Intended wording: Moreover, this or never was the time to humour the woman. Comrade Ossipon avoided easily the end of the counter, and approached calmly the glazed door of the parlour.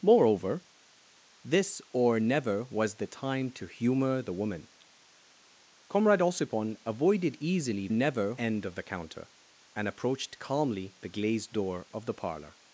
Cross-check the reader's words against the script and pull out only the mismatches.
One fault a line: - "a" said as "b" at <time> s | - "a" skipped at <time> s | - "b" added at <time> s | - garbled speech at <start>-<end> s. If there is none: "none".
- "the" said as "never" at 7.9 s